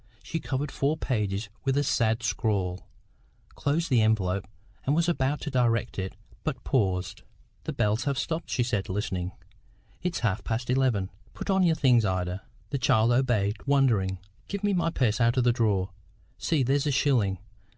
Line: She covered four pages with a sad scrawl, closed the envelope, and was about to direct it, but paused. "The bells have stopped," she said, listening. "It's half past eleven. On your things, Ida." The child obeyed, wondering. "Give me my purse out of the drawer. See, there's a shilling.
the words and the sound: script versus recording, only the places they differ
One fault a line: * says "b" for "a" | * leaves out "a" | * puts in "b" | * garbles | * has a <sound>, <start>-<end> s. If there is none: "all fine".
* puts in "Put"